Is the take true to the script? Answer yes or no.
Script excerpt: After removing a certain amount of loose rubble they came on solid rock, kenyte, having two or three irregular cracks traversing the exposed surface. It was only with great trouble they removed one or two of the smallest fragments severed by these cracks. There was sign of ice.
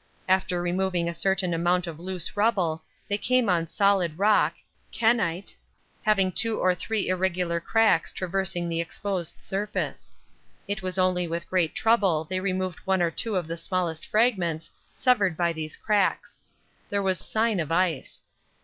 yes